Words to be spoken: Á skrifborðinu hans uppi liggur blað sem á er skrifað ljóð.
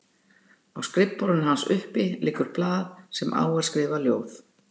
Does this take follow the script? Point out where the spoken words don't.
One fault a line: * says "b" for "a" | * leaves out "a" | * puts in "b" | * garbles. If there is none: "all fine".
all fine